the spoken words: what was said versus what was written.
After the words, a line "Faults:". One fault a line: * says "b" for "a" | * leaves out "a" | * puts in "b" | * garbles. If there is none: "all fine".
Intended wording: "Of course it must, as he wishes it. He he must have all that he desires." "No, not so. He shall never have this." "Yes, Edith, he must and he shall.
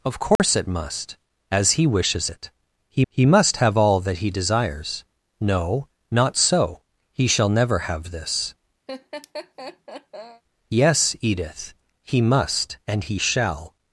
"Of course it must, as he wishes it. He he must have all that he desires." "No, not so. He shall never have this." "Yes, Edith, he must and he shall.
Faults:
all fine